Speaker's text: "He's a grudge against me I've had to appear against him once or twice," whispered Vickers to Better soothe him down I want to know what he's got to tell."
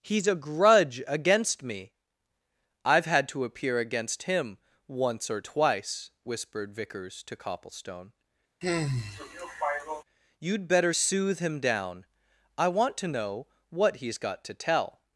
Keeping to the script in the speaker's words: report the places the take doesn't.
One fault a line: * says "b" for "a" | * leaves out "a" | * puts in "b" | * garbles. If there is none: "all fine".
* puts in "Copplestone You'd"